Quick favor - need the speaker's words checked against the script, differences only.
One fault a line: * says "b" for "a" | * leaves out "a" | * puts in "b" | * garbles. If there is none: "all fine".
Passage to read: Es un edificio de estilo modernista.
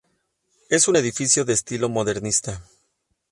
all fine